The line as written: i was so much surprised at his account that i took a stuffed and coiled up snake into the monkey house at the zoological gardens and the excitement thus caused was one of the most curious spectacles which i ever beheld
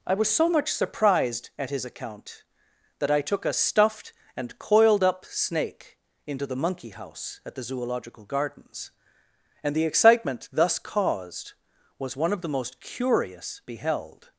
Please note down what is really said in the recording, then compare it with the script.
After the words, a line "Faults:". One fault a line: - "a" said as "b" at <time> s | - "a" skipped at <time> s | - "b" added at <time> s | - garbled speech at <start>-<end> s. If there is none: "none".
i was so much surprised at his account that i took a stuffed and coiled up snake into the monkey house at the zoological gardens and the excitement thus caused was one of the most curious beheld
Faults:
- "spectacles which i ever" skipped at 13.6 s